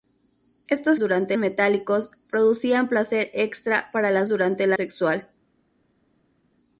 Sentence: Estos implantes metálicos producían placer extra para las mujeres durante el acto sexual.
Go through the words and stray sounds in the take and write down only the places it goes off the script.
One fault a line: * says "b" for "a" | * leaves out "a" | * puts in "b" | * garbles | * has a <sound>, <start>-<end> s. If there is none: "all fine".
* says "durante" for "implantes"
* leaves out "mujeres"
* leaves out "acto"